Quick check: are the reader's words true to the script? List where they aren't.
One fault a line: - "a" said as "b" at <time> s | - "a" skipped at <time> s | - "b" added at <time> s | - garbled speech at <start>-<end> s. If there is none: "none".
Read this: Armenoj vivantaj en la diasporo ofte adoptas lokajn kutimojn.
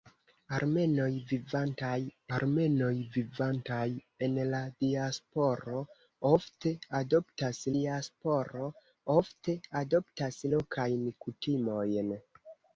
- "armenoj vivantaj" added at 2.4 s
- "diasporo ofte adoptas" added at 7.8 s